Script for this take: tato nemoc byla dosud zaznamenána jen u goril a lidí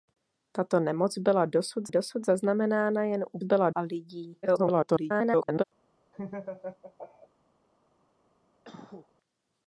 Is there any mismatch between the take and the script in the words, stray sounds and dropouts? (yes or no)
yes